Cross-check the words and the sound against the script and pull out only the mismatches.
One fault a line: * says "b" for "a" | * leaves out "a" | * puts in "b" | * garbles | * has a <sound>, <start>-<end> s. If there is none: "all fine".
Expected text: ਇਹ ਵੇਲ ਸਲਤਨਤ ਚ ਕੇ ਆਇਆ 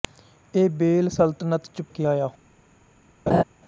* has a laugh, 3.3-3.4 s